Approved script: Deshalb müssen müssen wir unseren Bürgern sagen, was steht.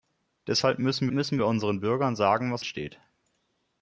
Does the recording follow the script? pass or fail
pass